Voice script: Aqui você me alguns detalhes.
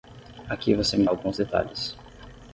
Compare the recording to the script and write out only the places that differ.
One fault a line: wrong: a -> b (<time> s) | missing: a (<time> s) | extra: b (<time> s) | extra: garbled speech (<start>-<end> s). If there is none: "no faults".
no faults